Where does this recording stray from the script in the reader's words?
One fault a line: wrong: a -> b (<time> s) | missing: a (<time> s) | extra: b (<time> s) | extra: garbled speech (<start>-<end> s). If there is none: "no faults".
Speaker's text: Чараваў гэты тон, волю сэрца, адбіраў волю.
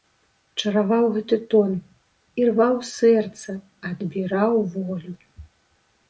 wrong: волю -> ірваў (2.4 s)